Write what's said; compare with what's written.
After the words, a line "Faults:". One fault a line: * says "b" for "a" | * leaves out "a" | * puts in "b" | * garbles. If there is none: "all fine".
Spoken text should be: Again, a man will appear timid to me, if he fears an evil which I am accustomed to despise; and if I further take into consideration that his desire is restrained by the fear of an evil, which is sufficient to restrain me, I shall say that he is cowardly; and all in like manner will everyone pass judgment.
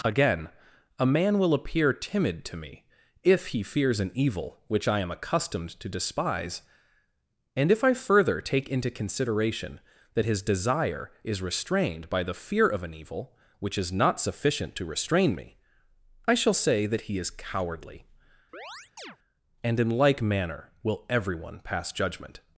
Again, a man will appear timid to me, if he fears an evil which I am accustomed to despise; and if I further take into consideration that his desire is restrained by the fear of an evil, which is not sufficient to restrain me, I shall say that he is cowardly; and in like manner will everyone pass judgment.
Faults:
* puts in "not"
* leaves out "all"